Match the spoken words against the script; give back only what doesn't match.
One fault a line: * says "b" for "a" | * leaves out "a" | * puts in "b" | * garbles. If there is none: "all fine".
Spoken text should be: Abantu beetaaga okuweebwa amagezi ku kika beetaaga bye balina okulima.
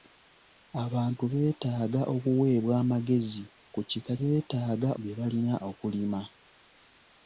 all fine